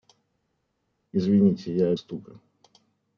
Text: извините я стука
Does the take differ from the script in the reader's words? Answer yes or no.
no